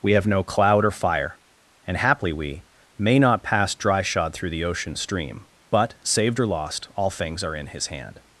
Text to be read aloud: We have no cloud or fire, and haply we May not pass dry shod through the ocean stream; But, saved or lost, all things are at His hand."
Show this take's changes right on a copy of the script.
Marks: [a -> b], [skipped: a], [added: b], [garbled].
We have no cloud or fire, and haply we May not pass dry shod through the ocean stream; But, saved or lost, all things are [at -> in] His hand."